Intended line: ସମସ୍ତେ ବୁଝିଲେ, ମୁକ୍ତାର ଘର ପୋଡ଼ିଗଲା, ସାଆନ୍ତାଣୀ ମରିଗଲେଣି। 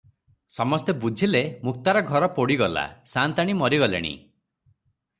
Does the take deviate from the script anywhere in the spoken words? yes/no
no